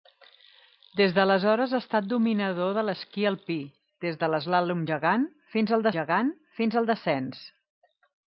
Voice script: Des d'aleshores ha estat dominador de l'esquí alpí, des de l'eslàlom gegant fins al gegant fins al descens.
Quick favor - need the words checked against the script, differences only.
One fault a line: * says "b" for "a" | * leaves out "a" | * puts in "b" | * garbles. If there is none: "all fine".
all fine